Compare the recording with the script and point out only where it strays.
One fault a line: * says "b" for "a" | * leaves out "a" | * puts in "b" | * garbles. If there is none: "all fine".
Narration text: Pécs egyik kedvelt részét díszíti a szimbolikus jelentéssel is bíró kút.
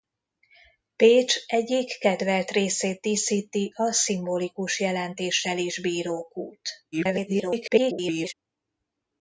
* garbles